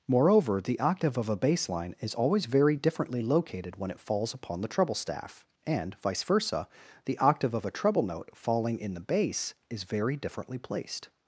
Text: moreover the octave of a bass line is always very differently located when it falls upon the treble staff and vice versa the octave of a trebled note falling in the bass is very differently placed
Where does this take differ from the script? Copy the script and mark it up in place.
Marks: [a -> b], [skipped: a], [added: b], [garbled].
moreover the octave of a bass line is always very differently located when it falls upon the treble staff and vice versa the octave of a [trebled -> treble] note falling in the bass is very differently placed